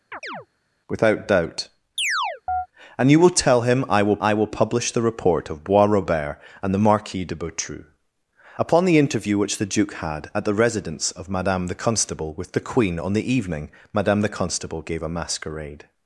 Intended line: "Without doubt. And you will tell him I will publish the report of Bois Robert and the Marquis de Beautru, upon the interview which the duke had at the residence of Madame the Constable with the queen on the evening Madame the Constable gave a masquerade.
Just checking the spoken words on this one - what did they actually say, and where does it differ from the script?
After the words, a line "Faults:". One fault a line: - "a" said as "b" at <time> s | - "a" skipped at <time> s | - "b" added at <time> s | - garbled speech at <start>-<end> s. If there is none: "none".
"Without doubt. And you will tell him I will I will publish the report of Bois Robert and the Marquis de Beautru, upon the interview which the duke had at the residence of Madame the Constable with the queen on the evening Madame the Constable gave a masquerade.
Faults:
- "I will" added at 4.2 s